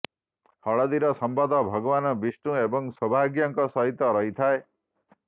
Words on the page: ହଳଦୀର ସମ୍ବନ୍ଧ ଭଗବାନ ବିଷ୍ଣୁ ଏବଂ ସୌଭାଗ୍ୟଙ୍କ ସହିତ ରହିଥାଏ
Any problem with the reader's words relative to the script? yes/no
no